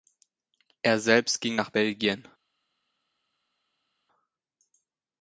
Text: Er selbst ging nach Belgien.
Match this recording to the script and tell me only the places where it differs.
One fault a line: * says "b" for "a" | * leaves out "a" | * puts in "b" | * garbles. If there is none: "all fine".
all fine